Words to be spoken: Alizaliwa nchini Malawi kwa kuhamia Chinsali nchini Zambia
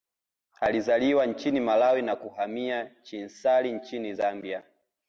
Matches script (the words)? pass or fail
fail